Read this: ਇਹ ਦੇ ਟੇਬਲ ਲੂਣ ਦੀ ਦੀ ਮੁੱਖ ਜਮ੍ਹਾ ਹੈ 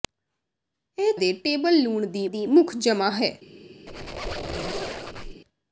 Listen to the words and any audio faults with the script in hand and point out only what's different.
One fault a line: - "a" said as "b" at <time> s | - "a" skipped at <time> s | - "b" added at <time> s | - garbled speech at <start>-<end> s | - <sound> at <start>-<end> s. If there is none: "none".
- squeak at 3.9-5.4 s